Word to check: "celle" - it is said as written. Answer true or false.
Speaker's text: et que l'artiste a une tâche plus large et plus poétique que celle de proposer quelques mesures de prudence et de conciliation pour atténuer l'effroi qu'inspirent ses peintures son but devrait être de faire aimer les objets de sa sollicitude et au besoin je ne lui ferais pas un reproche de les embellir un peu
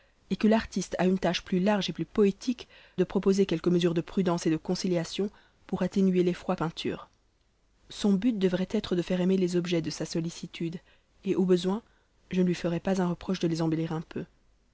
false